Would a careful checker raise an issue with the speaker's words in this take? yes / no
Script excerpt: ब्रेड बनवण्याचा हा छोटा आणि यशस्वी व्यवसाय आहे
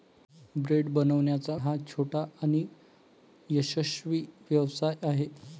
no